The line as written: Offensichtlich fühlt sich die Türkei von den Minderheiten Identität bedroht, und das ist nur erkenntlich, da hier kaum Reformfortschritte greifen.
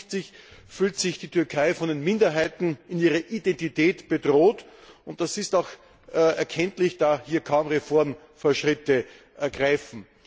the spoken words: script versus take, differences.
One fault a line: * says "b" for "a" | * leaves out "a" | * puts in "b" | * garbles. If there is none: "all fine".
* puts in "in ihrer"
* says "auch" for "nur"